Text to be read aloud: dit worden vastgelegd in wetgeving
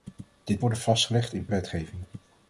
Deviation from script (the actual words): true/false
false